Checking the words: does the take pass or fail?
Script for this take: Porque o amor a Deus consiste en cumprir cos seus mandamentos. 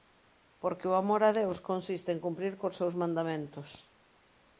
pass